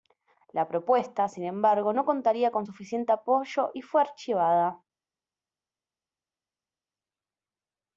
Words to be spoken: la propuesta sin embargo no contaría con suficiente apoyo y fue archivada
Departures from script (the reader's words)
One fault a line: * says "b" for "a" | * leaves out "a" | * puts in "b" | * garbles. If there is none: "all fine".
all fine